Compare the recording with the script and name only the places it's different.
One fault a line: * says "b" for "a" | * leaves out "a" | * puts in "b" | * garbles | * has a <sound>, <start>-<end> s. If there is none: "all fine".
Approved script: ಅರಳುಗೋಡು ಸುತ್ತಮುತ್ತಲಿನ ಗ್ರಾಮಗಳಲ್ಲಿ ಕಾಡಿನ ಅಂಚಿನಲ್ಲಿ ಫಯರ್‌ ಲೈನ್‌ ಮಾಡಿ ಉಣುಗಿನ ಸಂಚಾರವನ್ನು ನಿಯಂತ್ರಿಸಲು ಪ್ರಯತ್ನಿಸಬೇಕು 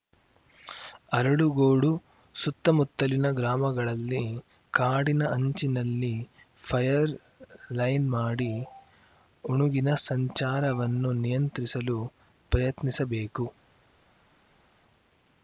all fine